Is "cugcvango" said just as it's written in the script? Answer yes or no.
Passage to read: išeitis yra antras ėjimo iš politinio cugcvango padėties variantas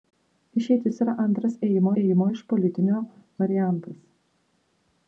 no